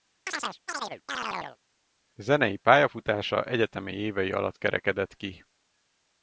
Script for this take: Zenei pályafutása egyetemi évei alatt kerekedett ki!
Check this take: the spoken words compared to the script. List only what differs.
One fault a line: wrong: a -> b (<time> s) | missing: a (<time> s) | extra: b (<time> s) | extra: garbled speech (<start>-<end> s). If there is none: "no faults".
no faults